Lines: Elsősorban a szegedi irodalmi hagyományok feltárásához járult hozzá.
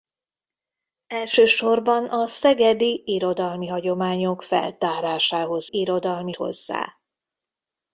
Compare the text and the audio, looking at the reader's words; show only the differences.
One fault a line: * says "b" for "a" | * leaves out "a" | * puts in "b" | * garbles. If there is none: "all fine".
* says "irodalmi" for "járult"